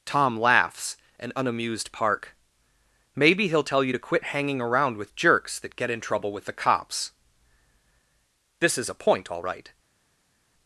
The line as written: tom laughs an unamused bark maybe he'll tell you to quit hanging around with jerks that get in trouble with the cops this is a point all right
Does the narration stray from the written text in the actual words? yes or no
yes